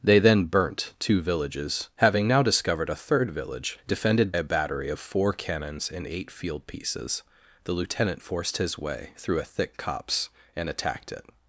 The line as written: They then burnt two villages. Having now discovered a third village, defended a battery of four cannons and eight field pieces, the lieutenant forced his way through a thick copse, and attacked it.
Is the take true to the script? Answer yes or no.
yes